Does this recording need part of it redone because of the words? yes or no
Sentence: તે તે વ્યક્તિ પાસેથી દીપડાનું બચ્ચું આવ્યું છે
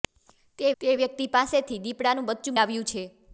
no